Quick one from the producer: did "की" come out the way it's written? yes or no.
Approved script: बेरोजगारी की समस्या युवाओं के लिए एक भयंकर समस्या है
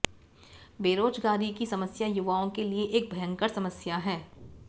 yes